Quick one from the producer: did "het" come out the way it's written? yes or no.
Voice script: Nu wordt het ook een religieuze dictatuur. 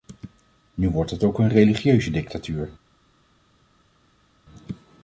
yes